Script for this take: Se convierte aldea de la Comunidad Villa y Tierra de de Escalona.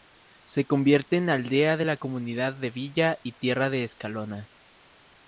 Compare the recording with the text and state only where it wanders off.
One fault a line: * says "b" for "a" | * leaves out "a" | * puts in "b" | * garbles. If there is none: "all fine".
* puts in "en"
* puts in "de"
* leaves out "de"